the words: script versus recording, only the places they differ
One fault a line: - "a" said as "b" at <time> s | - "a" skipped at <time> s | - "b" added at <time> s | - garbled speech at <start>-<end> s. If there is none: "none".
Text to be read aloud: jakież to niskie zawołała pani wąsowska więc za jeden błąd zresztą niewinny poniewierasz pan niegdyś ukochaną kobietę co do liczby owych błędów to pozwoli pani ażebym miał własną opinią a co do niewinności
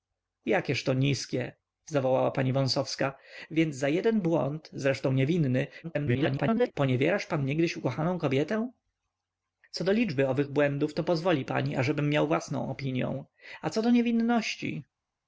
- garbled speech at 5.8-6.7 s